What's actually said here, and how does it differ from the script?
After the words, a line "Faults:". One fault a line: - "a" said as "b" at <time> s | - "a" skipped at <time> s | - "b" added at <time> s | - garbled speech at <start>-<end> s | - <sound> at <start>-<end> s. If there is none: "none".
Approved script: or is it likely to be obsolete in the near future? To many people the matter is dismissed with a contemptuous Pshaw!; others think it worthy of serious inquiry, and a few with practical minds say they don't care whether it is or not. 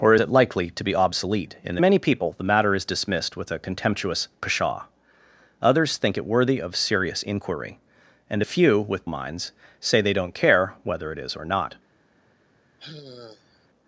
or it likely to be obsolete in the many people the matter is dismissed with a contemptuous Pshaw!; others think it worthy of serious inquiry, and a few with minds say they don't care whether it is or not.
Faults:
- "is" skipped at 0.1 s
- "near future To" skipped at 1.8 s
- "practical" skipped at 9.1 s
- sigh at 12.8-13.7 s